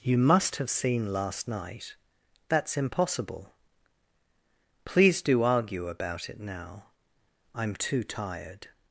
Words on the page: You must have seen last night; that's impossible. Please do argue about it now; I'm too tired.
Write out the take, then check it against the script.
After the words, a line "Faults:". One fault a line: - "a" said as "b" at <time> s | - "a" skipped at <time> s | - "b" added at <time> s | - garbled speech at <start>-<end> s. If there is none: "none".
You must have seen last night; that's impossible. Please do argue about it now; I'm too tired.
Faults:
none